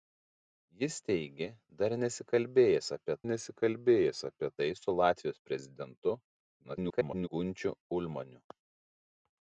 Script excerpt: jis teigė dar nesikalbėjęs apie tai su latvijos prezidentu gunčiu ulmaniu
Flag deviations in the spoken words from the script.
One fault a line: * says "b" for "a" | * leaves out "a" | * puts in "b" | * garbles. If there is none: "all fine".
* puts in "nesikalbėjęs apie"
* garbles